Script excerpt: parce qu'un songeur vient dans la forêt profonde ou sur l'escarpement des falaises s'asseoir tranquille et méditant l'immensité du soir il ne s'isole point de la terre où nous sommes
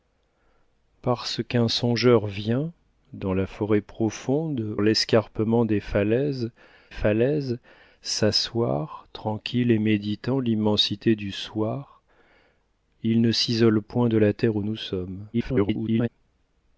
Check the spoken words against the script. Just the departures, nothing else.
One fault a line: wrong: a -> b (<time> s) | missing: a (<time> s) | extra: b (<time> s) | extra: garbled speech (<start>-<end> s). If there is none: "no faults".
missing: ou sur (4.8 s)
extra: falaises (6.9 s)
extra: garbled speech (15.3-16.1 s)